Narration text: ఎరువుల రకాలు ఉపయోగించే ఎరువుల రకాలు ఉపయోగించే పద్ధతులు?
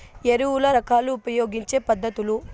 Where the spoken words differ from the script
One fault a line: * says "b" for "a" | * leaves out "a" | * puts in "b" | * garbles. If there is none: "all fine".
* leaves out "ఎరువుల రకాలు ఉపయోగించే"